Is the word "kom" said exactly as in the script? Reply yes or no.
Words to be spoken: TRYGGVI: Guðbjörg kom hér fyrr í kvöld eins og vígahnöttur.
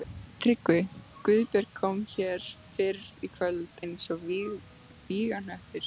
yes